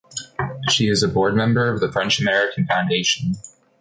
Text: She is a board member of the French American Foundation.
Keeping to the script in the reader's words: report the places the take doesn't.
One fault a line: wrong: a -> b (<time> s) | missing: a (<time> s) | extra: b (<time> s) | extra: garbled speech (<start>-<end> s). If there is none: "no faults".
no faults